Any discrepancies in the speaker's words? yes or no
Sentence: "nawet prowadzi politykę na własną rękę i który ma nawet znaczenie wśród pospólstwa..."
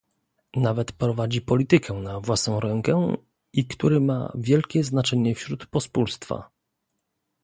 yes